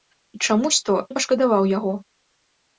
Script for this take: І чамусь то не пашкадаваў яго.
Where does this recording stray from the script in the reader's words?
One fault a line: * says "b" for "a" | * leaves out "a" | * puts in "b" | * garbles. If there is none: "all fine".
all fine